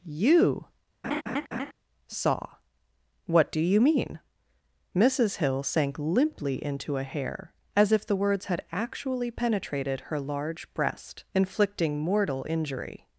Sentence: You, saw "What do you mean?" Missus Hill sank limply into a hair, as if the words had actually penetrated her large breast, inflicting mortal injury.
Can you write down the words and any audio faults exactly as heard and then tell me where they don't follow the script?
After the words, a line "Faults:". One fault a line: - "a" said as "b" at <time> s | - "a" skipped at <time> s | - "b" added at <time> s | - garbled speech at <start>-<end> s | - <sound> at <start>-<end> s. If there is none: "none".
You, saw "What do you mean?" Missus Hill sank limply into a hair, as if the words had actually penetrated her large breast, inflicting mortal injury.
Faults:
- laugh at 1.0-1.7 s